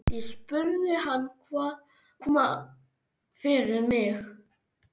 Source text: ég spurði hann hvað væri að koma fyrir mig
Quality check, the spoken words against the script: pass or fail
fail